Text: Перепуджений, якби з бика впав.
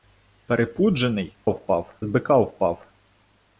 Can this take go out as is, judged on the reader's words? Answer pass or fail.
fail